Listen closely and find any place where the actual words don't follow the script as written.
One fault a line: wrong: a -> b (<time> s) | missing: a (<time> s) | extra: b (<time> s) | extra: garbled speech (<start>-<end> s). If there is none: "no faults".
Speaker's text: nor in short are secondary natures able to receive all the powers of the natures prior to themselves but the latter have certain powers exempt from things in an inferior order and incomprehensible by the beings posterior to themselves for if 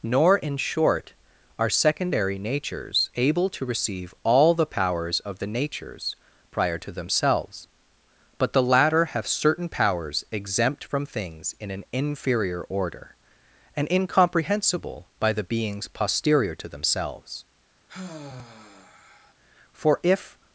no faults